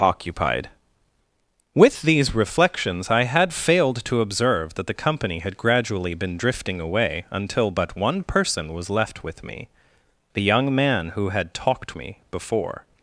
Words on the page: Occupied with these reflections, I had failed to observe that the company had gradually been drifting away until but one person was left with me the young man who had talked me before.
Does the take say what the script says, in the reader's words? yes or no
yes